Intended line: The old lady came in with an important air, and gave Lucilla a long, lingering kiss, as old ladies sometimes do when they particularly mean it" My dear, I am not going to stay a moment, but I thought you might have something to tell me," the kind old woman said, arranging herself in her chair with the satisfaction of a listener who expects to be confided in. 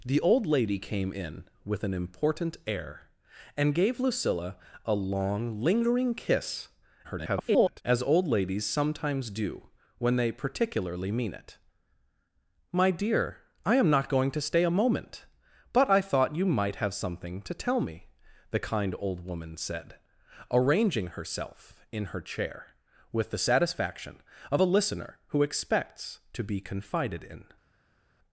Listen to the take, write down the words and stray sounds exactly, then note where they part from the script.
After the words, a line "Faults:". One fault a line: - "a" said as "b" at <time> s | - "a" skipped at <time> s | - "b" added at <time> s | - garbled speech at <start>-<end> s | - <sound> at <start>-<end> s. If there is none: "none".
The old lady came in with an important air, and gave Lucilla a long, lingering kiss, [garbled] as old ladies sometimes do when they particularly mean it" My dear, I am not going to stay a moment, but I thought you might have something to tell me," the kind old woman said, arranging herself in her chair with the satisfaction of a listener who expects to be confided in.
Faults:
- garbled speech at 7.0-7.8 s